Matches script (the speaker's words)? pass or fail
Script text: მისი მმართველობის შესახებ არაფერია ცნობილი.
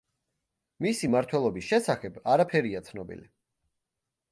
pass